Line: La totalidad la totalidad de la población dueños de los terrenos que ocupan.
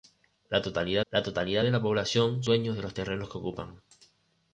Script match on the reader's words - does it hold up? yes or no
yes